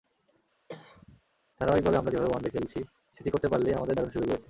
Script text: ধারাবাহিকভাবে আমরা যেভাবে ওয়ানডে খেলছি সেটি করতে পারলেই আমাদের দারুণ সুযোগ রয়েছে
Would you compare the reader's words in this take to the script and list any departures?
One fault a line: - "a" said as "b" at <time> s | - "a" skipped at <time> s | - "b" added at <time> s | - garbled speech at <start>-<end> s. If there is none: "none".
none